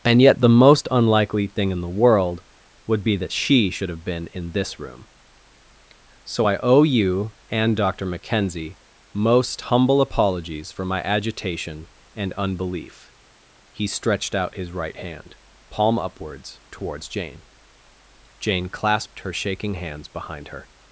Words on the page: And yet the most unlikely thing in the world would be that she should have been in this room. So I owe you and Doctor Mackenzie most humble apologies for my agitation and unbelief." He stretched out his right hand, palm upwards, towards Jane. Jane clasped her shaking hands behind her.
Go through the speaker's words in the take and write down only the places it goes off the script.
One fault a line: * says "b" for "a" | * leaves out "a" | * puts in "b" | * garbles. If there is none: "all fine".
all fine